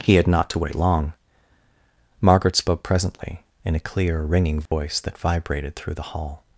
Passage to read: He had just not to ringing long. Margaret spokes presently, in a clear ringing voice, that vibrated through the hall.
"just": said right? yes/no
no